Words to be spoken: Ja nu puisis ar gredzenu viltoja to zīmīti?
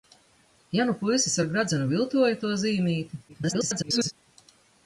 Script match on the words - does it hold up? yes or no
no